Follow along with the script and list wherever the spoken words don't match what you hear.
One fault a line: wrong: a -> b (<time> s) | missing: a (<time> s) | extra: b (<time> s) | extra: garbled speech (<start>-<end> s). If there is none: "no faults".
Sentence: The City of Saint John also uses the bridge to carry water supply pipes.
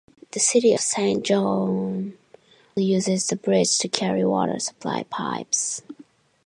missing: of (0.7 s)
missing: also (2.1 s)